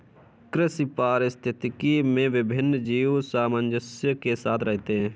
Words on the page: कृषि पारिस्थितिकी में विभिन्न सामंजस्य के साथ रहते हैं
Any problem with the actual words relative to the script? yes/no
yes